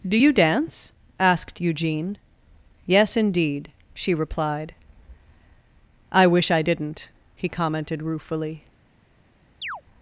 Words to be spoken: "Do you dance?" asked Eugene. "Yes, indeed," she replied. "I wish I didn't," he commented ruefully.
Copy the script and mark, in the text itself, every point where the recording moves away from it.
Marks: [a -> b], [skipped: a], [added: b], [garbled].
"Do you dance?" asked Eugene. "Yes, indeed," she replied. "I wish I didn't," he commented ruefully.